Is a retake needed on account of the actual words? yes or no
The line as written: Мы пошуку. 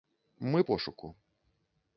no